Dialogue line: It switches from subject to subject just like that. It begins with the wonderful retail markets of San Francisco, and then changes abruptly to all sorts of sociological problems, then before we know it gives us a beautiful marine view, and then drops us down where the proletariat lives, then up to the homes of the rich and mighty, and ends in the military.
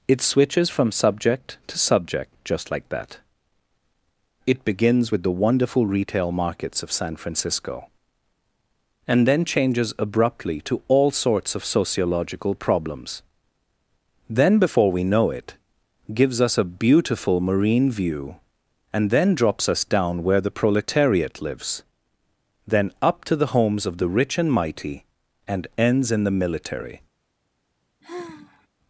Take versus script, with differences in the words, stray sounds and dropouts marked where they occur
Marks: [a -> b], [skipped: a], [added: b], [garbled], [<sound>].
It switches from subject to subject just like that. It begins with the wonderful retail markets of San Francisco, and then changes abruptly to all sorts of sociological problems, then before we know it gives us a beautiful marine view, and then drops us down where the proletariat lives, then up to the homes of the rich and mighty, and ends in the military. [sigh]